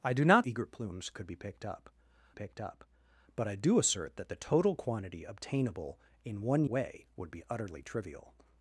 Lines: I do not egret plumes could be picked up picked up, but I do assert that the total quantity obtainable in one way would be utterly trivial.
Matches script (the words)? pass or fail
pass